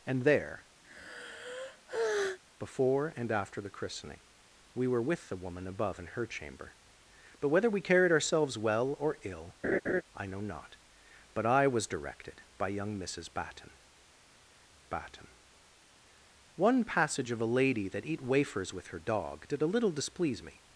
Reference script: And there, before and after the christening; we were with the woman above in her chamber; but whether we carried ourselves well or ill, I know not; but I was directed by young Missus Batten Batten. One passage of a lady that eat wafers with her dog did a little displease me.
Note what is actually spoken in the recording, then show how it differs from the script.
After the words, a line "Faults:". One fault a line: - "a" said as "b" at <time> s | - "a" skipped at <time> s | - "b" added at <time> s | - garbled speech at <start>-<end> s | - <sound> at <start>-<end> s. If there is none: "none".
And there, before and after the christening; we were with the woman above in her chamber; but whether we carried ourselves well or ill, I know not; but I was directed by young Missus Batten Batten. One passage of a lady that eat wafers with her dog did a little displease me.
Faults:
- sigh at 0.8-2.4 s
- laugh at 9.6-10.0 s